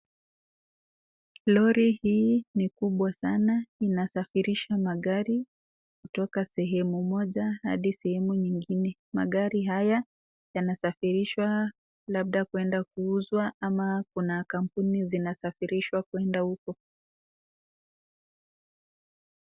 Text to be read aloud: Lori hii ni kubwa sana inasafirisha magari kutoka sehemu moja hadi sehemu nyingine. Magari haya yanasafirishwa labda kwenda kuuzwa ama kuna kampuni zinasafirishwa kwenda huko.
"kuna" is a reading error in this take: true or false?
false